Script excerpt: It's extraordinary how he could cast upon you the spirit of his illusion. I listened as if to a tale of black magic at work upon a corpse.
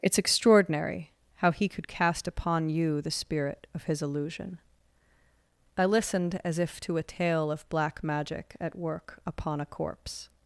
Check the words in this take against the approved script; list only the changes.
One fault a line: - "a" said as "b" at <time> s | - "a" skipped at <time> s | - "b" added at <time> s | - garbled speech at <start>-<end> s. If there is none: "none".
none